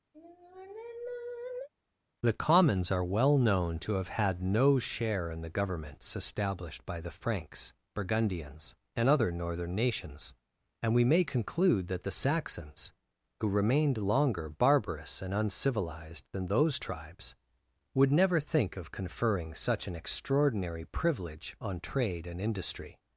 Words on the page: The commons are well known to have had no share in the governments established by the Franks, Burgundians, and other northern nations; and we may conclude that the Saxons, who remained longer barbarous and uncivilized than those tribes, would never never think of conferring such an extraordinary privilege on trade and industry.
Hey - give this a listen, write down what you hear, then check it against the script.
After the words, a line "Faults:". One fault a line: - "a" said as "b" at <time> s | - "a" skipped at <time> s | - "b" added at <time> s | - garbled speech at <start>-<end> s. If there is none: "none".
The commons are well known to have had no share in the governments established by the Franks, Burgundians, and other northern nations; and we may conclude that the Saxons, who remained longer barbarous and uncivilized than those tribes, would never think of conferring such an extraordinary privilege on trade and industry.
Faults:
- "never" skipped at 18.4 s